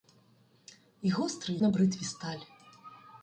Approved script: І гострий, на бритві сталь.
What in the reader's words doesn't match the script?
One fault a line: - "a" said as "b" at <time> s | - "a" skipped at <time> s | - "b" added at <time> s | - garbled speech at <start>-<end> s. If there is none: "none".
none